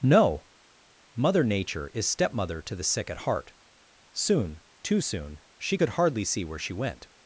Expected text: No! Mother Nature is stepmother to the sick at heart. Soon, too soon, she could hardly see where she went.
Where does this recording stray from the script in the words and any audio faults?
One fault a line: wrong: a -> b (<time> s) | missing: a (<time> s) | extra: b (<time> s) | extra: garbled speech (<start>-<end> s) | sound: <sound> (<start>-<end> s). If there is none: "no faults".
no faults